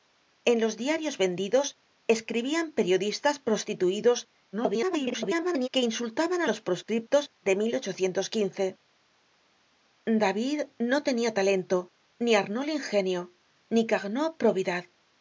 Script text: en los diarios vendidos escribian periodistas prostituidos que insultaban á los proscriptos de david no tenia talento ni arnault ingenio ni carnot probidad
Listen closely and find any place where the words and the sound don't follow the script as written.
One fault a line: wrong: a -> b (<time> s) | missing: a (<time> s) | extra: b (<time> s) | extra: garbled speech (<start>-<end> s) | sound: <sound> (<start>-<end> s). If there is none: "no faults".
extra: garbled speech (4.5-5.7 s)